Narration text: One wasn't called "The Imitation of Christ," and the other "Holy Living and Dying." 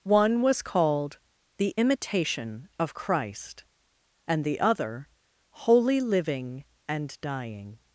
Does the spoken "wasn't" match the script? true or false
false